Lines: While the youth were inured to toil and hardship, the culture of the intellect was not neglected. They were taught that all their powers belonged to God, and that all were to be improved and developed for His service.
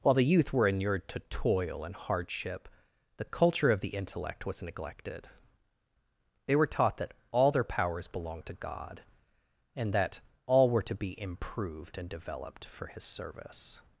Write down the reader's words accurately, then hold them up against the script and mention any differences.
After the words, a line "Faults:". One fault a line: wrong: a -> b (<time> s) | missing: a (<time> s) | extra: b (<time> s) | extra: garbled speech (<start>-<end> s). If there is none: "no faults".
While the youth were inured to toil and hardship, the culture of the intellect was neglected. They were taught that all their powers belonged to God, and that all were to be improved and developed for His service.
Faults:
missing: not (4.6 s)